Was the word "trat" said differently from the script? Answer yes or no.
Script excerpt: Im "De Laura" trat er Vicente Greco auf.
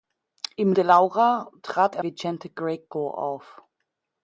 no